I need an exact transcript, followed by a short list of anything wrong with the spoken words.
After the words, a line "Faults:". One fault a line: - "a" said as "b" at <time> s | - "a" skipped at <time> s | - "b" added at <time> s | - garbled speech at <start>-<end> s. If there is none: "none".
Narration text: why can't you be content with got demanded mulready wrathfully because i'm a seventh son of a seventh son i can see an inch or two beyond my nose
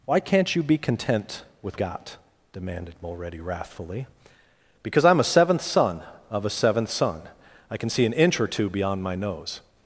why can't you be content with got demanded mulready wrathfully because i'm a seventh son of a seventh son i can see an inch or two beyond my nose
Faults:
none